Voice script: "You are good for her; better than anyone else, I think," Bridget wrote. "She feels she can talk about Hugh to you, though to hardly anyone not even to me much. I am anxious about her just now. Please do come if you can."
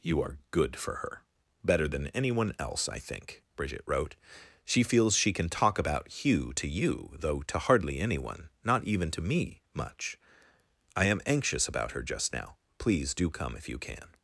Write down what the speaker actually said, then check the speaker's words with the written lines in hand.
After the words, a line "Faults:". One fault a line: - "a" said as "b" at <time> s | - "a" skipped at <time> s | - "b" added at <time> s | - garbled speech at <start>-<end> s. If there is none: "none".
"You are good for her; better than anyone else, I think," Bridget wrote. "She feels she can talk about Hugh to you, though to hardly anyone not even to me much. I am anxious about her just now. Please do come if you can."
Faults:
none